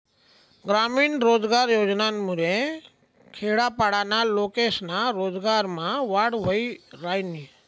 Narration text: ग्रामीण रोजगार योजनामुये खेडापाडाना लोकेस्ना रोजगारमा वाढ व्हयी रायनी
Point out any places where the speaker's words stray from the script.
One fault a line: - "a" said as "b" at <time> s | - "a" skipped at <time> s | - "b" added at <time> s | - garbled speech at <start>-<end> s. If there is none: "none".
none